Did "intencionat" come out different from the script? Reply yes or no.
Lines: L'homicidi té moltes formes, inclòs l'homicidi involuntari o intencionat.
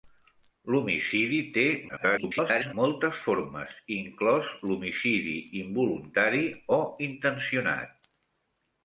no